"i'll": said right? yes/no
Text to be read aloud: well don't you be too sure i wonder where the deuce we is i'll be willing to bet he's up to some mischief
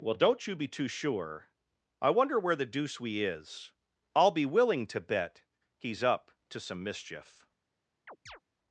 yes